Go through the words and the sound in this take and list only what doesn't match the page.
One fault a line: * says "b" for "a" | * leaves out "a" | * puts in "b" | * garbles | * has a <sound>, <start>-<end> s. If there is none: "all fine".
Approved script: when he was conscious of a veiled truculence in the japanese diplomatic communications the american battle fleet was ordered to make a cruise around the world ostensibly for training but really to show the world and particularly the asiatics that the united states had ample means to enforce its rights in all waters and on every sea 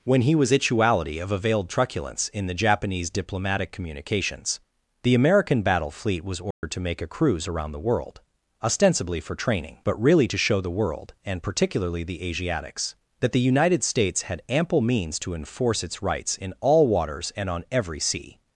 * says "ituality" for "conscious"
* has a dropout, 6.5-6.6 s